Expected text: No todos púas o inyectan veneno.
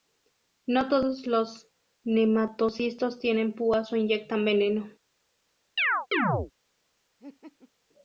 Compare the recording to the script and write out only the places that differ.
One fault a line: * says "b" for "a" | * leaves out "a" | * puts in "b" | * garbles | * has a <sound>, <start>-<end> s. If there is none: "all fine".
* puts in "los nematocistos tienen"
* has a chirp, 5.8-6.5 s
* has a laugh, 7.2-7.7 s